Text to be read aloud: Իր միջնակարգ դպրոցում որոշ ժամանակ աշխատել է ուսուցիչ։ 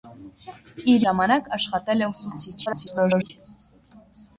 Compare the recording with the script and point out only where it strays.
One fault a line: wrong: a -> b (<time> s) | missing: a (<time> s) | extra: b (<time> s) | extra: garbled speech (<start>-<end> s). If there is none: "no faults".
missing: միջնակարգ դպրոցում որոշ (1.0 s)
extra: garbled speech (2.7-3.3 s)